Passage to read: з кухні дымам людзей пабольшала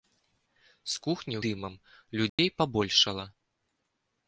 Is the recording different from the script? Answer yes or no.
no